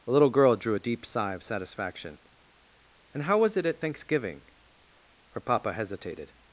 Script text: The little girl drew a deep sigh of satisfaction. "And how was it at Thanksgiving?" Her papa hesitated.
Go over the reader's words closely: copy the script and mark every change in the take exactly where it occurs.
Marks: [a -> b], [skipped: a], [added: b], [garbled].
The little girl drew a deep sigh of satisfaction. "And how was it at Thanksgiving?" Her papa hesitated.